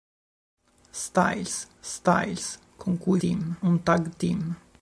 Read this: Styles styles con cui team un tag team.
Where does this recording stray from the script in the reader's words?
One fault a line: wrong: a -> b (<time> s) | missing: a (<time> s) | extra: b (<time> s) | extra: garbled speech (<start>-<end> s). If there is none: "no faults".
no faults